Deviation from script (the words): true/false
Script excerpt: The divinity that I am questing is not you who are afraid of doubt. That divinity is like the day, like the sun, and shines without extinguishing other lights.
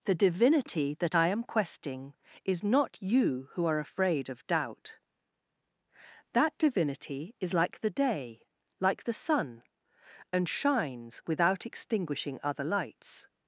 false